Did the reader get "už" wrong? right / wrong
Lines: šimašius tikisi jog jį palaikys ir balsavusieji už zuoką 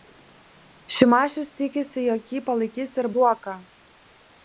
wrong